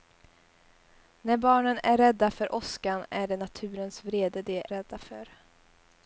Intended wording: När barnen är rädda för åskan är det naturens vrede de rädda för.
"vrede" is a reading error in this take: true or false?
false